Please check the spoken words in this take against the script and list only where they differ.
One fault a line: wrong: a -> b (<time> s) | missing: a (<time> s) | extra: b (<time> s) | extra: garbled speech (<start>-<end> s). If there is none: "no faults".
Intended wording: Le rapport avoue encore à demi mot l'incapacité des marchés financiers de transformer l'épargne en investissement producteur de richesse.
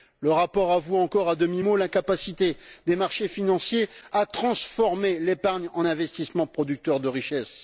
wrong: de -> à (4.1 s)